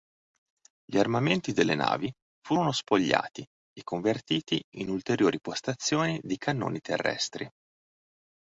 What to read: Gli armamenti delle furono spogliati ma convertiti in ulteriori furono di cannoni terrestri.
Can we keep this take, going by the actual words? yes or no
no